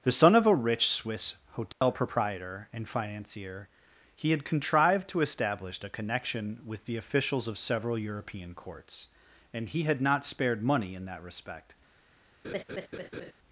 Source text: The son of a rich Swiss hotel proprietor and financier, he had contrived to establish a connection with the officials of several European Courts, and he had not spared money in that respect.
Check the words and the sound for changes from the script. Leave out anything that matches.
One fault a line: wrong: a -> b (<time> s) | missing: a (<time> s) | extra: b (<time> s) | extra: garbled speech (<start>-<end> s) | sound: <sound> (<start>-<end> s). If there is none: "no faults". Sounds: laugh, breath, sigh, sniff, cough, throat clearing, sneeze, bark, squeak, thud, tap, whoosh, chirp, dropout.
sound: dropout (1.7-1.8 s)
sound: laugh (12.4-13.3 s)